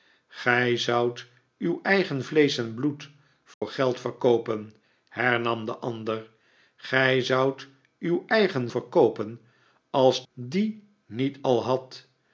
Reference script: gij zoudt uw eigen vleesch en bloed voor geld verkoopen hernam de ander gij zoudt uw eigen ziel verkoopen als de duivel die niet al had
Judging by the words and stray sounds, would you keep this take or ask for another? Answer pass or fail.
fail